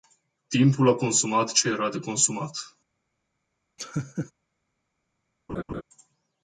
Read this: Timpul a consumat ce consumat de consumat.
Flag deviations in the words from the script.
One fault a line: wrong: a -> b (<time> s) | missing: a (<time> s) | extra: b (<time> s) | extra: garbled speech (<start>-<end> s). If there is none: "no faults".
wrong: consumat -> era (1.7 s)